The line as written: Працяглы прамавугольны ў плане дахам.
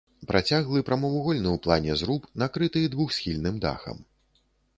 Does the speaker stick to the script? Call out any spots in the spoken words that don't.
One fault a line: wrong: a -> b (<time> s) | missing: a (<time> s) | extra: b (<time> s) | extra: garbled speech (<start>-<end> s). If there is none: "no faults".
extra: зруб накрыты двухсхільным (2.0 s)